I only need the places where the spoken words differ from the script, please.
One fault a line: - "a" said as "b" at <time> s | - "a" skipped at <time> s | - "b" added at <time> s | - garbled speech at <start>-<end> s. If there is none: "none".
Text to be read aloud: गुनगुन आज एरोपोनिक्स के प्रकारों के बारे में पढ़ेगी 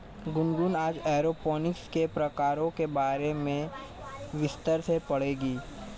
- "विस्तार से" added at 4.3 s